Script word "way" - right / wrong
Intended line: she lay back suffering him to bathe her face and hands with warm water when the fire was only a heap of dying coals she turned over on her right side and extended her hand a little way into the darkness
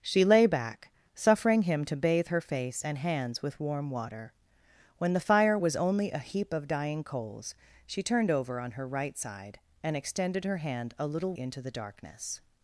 wrong